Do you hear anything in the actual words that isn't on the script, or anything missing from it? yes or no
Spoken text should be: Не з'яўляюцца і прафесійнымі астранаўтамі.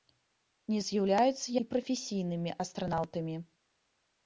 no